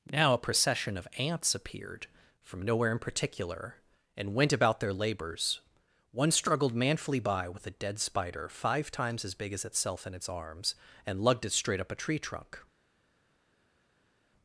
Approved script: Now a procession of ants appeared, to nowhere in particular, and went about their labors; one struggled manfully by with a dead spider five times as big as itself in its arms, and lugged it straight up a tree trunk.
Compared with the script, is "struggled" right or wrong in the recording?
right